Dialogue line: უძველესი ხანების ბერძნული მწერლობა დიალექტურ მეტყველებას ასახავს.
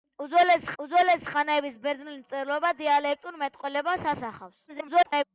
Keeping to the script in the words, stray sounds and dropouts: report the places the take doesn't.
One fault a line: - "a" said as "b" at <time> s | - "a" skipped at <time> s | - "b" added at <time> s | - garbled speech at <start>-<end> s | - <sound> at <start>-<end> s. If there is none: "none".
- "უძველესი" added at 0.8 s
- garbled speech at 4.7-5.2 s